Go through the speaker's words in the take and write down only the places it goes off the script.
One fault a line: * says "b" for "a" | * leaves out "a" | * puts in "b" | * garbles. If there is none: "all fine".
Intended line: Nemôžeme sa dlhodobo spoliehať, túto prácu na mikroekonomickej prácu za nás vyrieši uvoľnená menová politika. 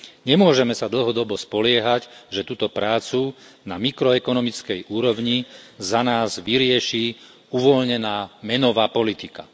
* puts in "že"
* says "úrovni" for "prácu"